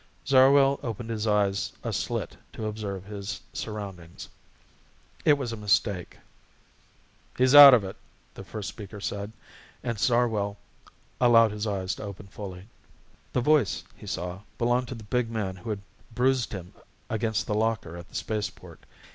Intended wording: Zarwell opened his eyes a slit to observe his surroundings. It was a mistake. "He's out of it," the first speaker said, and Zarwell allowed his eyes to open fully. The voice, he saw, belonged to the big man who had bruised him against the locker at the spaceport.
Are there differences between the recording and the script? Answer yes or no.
no